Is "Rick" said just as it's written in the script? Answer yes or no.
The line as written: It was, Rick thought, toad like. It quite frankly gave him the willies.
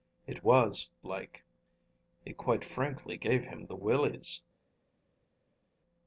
no